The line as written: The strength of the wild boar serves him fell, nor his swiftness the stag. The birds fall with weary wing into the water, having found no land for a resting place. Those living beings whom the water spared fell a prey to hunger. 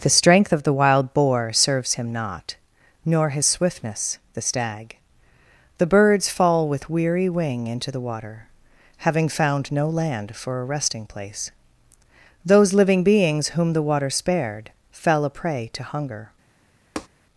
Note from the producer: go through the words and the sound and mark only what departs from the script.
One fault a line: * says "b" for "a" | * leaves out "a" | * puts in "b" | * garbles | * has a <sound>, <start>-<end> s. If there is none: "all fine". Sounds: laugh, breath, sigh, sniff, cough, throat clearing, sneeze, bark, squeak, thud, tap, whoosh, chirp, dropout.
* says "not" for "fell"
* has a tap, 17.0-17.1 s